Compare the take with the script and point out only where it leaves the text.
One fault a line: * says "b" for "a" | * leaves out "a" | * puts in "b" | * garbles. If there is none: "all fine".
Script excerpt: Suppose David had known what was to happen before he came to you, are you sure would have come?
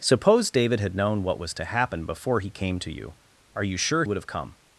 all fine